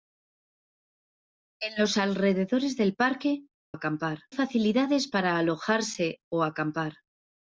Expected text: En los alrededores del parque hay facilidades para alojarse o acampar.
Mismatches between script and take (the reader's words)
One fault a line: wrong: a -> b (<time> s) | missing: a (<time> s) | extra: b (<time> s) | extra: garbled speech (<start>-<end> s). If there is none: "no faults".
wrong: hay -> acampar (3.7 s)